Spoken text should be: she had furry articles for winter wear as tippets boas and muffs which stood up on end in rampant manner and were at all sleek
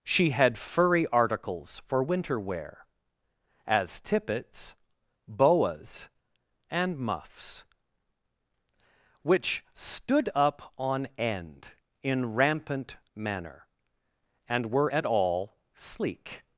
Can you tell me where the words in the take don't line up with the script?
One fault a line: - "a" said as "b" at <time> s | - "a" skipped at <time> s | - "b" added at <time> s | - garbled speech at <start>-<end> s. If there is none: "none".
none